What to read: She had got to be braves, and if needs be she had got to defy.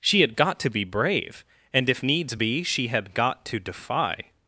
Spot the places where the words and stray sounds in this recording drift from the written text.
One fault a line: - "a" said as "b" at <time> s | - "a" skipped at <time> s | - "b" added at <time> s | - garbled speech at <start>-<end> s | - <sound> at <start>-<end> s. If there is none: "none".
- "braves" said as "brave" at 0.8 s